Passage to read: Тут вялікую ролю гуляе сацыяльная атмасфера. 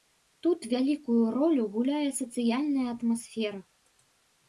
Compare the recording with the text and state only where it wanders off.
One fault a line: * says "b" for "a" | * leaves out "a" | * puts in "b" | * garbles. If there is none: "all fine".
all fine